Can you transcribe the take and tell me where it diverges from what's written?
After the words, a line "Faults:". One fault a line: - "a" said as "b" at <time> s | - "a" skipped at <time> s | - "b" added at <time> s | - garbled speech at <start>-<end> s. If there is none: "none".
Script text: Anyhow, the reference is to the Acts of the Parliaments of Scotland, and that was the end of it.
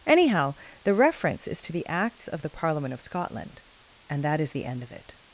Anyhow, the reference is to the Acts of the Parliament of Scotland, and that is the end of it.
Faults:
- "Parliaments" said as "Parliament" at 2.5 s
- "was" said as "is" at 4.4 s